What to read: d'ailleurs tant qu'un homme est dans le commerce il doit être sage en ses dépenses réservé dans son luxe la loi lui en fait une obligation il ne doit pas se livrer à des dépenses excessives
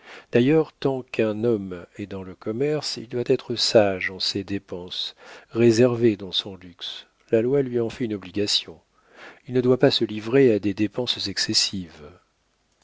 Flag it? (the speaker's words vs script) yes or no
no